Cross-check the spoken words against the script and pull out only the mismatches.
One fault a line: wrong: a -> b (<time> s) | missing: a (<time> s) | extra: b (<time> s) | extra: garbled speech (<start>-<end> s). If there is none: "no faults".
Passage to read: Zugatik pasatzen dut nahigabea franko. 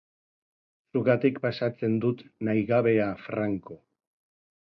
no faults